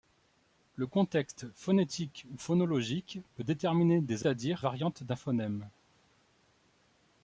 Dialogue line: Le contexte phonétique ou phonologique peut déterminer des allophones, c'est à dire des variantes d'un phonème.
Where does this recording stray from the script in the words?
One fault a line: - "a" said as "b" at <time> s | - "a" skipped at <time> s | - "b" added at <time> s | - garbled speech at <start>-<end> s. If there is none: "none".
- "allophones c'est" skipped at 4.2 s
- "des" skipped at 4.6 s